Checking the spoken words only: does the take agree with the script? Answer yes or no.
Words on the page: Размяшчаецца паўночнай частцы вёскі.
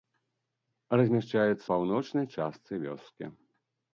yes